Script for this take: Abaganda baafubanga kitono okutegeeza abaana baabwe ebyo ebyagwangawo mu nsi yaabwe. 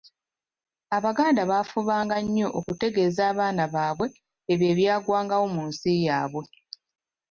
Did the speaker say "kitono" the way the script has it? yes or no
no